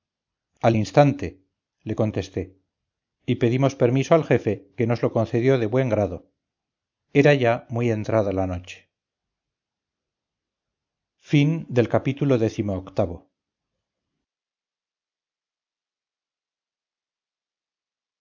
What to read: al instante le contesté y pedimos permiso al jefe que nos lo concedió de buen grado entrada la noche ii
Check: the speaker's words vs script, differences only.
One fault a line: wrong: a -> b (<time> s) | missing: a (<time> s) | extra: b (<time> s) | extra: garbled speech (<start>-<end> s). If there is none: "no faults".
extra: era ya muy (7.1 s)